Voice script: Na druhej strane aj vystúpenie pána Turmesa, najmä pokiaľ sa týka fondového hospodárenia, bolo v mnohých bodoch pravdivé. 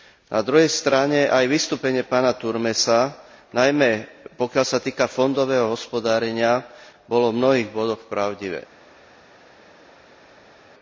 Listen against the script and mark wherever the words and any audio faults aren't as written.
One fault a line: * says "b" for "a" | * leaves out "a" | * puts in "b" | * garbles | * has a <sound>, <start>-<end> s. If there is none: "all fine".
all fine